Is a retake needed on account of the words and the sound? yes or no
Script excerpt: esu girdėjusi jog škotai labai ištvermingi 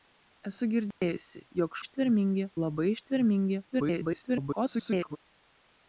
yes